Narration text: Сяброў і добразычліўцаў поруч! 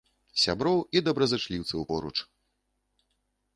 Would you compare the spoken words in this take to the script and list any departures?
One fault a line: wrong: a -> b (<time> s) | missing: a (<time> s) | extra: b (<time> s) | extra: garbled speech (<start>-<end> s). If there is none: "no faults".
no faults